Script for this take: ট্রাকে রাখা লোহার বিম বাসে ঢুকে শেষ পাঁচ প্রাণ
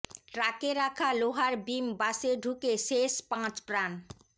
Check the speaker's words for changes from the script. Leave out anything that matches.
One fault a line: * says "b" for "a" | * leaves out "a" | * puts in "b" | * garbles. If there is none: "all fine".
all fine